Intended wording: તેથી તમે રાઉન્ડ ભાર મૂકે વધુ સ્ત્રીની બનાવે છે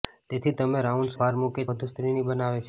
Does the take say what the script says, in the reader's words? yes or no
yes